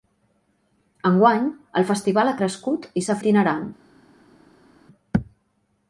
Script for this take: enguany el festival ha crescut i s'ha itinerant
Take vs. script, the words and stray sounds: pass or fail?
pass